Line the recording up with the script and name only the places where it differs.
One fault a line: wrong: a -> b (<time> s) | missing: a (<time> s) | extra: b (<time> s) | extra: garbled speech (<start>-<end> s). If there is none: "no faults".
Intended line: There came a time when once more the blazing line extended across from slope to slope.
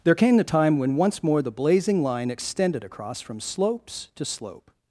wrong: a -> the (0.4 s)
wrong: slope -> slopes (3.4 s)